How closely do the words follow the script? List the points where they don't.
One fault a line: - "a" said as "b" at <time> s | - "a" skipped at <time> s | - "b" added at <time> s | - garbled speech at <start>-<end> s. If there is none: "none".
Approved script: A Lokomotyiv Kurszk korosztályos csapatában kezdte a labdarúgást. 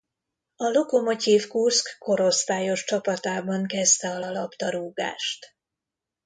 - "a" added at 4.2 s